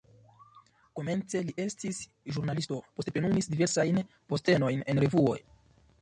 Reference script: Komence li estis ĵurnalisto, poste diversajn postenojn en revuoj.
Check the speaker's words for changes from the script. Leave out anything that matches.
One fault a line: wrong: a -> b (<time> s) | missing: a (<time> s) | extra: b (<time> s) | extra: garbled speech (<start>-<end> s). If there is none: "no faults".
extra: plenumis (3.2 s)